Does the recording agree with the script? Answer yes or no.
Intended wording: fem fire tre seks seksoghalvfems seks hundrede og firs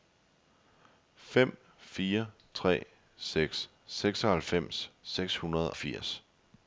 no